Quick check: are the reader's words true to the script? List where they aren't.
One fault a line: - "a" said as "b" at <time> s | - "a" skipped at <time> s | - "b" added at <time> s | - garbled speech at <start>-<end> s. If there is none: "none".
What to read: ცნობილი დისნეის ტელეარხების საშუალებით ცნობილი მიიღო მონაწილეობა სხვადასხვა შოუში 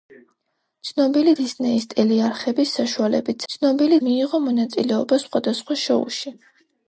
none